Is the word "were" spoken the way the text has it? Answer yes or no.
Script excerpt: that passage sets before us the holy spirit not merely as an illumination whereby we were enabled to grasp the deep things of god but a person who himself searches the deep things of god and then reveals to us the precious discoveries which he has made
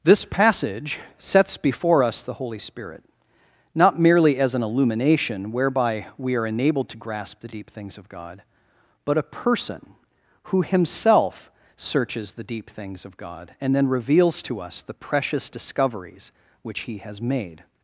no